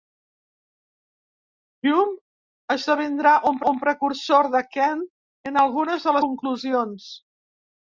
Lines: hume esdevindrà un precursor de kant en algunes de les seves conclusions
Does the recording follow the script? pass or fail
fail